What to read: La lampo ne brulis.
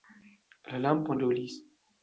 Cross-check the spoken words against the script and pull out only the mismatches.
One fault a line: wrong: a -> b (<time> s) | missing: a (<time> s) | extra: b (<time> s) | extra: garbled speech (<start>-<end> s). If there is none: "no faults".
missing: ne (1.1 s)